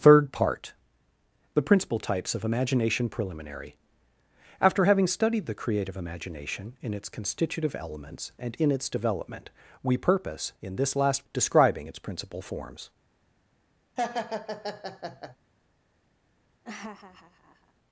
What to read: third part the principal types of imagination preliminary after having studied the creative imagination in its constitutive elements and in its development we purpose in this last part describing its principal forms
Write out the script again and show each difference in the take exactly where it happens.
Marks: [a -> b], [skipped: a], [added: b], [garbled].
third part the principal types of imagination preliminary after having studied the creative imagination in its constitutive elements and in its development we purpose in this last [skipped: part] describing its principal forms